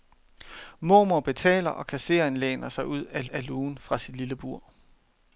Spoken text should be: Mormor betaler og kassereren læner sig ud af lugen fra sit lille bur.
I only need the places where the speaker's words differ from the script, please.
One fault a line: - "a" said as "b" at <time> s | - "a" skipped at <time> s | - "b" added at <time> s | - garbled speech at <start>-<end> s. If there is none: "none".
- "af" added at 3.2 s